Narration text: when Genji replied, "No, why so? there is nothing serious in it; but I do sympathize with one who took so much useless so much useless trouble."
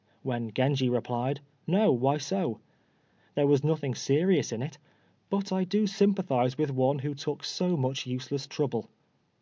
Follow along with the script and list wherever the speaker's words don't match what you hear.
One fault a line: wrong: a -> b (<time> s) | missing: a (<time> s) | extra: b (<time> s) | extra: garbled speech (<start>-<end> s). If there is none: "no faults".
wrong: is -> was (3.5 s)
missing: so much useless (8.5 s)